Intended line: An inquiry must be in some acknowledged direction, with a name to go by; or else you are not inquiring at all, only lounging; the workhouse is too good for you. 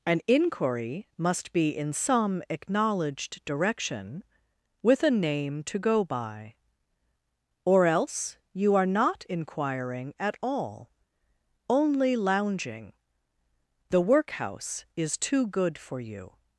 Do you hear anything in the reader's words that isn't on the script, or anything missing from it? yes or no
no